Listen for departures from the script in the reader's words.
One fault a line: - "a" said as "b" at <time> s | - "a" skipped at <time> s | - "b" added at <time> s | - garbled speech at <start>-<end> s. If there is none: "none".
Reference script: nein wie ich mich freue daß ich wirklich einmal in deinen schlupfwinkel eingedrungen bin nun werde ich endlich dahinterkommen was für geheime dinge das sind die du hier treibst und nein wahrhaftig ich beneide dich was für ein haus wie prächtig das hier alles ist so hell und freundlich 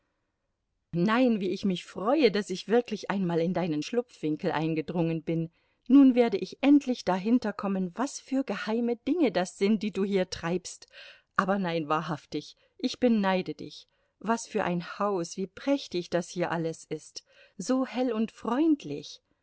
- "und" said as "aber" at 11.3 s